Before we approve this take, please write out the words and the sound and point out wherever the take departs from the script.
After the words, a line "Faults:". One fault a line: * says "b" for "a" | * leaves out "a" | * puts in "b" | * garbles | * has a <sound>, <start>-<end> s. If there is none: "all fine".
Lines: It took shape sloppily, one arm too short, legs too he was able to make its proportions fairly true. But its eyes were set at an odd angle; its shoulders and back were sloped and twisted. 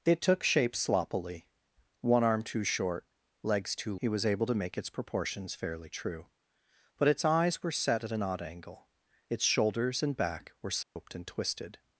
It took shape sloppily, one arm too short, legs too he was able to make its proportions fairly true. But its eyes were set at an odd angle; its shoulders and back were sloped and twisted.
Faults:
* has a dropout, 10.8-11.0 s